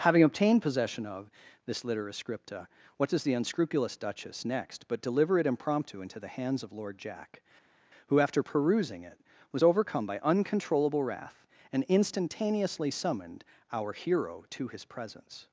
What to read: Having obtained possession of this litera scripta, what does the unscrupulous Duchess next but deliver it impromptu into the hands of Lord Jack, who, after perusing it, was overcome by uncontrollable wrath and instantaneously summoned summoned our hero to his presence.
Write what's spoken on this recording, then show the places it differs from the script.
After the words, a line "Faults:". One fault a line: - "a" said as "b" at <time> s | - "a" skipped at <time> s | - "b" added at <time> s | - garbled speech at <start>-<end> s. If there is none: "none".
Having obtained possession of this litera scripta, what does the unscrupulous Duchess next but deliver it impromptu into the hands of Lord Jack, who, after perusing it, was overcome by uncontrollable wrath and instantaneously summoned our hero to his presence.
Faults:
- "summoned" skipped at 13.4 s